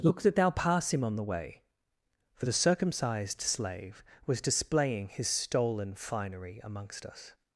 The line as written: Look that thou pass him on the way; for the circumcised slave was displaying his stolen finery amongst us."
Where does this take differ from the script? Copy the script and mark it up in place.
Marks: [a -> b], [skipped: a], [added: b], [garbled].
Look that thou pass him on the way; for the circumcised slave was displaying his stolen finery amongst us."